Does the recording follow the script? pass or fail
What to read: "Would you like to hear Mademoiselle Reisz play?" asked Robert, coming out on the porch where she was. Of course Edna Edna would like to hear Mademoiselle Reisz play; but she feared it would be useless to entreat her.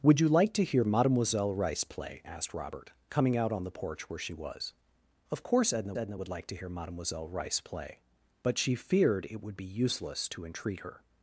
pass